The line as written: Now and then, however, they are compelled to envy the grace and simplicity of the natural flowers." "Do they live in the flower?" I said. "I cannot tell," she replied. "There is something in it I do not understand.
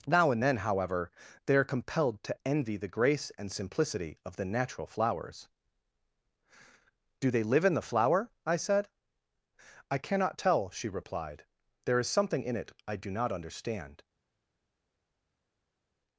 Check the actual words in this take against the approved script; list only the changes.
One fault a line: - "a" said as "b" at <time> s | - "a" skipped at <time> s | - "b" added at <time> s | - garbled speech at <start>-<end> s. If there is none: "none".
none